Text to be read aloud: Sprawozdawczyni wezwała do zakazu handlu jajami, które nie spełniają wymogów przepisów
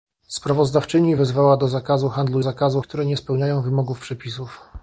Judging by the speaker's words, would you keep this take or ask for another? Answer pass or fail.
fail